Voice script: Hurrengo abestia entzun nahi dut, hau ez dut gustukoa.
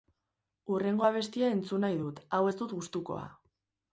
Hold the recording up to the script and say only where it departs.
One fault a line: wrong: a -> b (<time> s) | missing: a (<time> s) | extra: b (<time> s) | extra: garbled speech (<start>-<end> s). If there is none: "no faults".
no faults